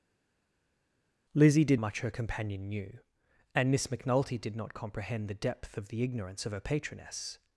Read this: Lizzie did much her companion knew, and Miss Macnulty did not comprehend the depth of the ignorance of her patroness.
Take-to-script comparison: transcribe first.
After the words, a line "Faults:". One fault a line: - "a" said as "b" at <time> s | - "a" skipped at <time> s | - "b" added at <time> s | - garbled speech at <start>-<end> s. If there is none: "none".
Lizzie did much her companion knew, and Miss Macnulty did not comprehend the depth of the ignorance of her patroness.
Faults:
none